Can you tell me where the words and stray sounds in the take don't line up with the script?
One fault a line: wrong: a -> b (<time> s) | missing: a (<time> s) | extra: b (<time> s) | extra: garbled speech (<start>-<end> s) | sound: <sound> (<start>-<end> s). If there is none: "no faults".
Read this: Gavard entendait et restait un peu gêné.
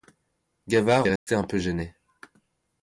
missing: entendait (1.1 s)
sound: dropout (1.2-1.3 s)